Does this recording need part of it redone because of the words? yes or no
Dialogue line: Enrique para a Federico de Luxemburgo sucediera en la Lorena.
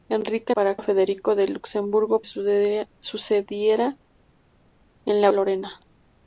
no